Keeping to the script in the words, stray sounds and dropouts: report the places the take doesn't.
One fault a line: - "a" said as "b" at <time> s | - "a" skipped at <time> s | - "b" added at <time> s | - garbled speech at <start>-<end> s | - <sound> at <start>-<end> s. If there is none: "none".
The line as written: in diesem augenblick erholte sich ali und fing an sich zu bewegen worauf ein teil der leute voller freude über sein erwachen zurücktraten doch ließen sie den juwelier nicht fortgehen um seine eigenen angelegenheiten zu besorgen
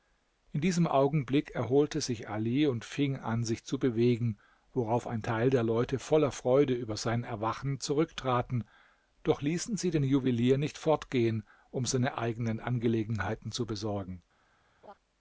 - laugh at 14.8-14.9 s